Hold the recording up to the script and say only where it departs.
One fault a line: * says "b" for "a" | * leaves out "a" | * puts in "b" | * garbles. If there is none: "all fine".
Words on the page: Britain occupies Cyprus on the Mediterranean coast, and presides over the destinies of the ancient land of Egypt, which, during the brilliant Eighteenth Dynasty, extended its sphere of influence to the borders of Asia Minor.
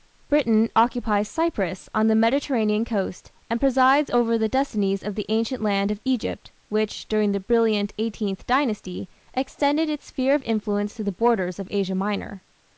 all fine